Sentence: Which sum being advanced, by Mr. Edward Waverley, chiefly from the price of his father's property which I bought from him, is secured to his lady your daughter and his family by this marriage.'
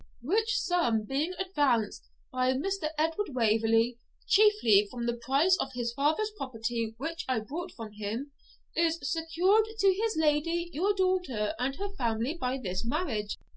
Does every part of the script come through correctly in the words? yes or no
no